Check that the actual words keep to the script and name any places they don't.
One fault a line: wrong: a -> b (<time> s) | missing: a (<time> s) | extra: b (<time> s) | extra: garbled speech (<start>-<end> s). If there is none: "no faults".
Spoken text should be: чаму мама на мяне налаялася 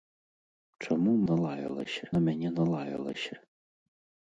wrong: мама -> налаялася (1.3 s)